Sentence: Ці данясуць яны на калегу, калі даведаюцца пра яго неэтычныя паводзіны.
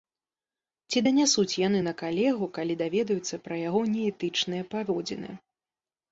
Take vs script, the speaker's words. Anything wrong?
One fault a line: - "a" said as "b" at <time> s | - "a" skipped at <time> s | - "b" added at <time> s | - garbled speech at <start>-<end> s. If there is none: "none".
none